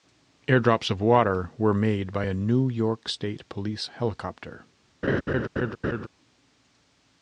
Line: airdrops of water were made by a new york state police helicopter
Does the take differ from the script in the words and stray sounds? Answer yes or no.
yes